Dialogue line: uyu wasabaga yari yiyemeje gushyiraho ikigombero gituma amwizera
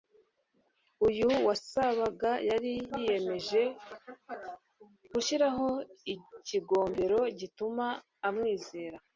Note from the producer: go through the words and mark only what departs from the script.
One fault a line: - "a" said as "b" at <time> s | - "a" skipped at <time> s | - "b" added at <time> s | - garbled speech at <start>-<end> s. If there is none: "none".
none